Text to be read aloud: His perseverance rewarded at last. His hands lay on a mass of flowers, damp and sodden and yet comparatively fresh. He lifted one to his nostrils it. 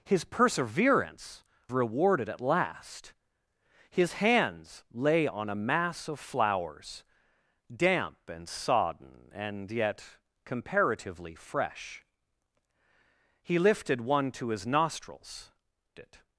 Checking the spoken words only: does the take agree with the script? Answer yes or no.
yes